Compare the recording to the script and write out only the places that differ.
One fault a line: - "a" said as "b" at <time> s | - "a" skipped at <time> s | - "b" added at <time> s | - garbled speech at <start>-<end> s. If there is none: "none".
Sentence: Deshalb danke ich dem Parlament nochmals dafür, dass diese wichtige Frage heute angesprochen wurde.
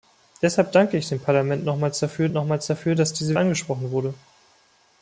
- "nochmals dafür" added at 2.3 s
- "wichtige Frage heute" skipped at 3.4 s